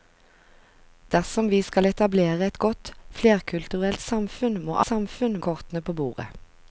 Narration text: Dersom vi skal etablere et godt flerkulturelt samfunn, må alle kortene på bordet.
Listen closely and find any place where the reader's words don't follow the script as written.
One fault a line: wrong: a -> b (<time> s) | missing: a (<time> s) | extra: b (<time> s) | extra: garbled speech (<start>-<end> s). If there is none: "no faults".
wrong: alle -> samfunn (4.8 s)